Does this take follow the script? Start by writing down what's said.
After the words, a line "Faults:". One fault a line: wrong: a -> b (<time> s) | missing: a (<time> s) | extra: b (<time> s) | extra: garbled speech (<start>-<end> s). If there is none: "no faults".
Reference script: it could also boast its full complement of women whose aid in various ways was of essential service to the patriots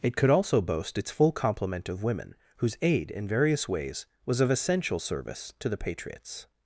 it could also boast its full complement of women whose aid in various ways was of essential service to the patriots
Faults:
no faults